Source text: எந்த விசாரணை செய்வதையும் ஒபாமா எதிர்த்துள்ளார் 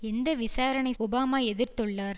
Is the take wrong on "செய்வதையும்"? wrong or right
wrong